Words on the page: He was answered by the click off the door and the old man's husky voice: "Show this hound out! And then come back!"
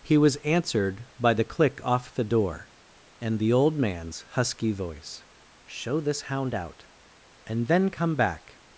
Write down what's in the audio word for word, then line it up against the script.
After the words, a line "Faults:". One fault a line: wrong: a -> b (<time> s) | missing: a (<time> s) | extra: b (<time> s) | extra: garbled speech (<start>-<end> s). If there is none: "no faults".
He was answered by the click off the door and the old man's husky voice: "Show this hound out! And then come back!"
Faults:
no faults